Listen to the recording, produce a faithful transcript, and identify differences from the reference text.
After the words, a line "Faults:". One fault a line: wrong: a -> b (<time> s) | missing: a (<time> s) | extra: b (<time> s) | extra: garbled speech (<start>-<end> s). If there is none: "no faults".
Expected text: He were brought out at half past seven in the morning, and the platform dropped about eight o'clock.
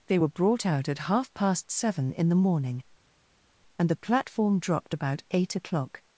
They were brought out at half past seven in the morning, and the platform dropped about eight o'clock.
Faults:
wrong: He -> They (0.1 s)